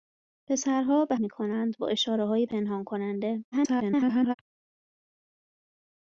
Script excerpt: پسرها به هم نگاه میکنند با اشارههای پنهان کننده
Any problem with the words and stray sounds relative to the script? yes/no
yes